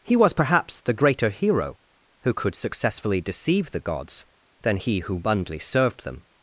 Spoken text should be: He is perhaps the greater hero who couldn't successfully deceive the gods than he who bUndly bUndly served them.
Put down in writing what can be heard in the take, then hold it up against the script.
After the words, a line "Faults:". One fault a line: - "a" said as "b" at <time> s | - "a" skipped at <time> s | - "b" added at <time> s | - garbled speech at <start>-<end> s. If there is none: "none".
He was perhaps the greater hero who could successfully deceive the gods than he who bUndly served them.
Faults:
- "is" said as "was" at 0.1 s
- "couldn't" said as "could" at 2.3 s
- "bUndly" skipped at 5.6 s